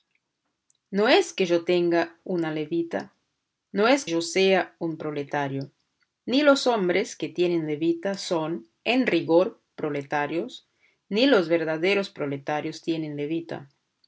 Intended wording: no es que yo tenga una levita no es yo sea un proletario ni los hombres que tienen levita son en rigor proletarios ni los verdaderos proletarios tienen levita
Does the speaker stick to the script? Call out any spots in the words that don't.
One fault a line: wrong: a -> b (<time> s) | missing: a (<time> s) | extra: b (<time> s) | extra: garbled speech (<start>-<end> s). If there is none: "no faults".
no faults